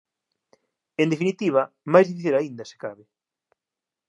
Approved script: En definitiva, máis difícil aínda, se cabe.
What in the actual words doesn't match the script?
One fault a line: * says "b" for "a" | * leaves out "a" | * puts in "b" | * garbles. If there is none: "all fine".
all fine